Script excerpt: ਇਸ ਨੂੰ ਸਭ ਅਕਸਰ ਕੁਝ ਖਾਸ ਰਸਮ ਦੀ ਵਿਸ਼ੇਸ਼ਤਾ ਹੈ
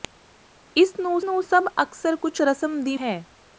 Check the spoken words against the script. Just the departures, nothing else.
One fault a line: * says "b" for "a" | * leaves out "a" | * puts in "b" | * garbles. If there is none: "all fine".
* puts in "ਨੂੰ"
* leaves out "ਖਾਸ"
* leaves out "ਵਿਸ਼ੇਸ਼ਤਾ"